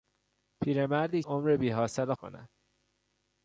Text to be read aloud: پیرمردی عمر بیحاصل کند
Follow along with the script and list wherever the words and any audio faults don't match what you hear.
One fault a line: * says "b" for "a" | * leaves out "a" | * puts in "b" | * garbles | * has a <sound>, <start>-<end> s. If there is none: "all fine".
all fine